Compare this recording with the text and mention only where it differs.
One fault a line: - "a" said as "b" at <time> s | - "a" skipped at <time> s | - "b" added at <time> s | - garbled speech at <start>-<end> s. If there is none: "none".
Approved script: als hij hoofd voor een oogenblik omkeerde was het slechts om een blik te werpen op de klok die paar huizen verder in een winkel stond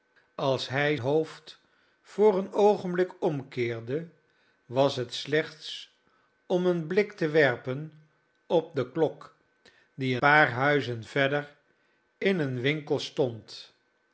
none